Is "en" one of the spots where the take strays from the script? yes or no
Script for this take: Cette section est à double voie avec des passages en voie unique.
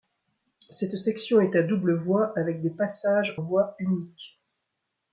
yes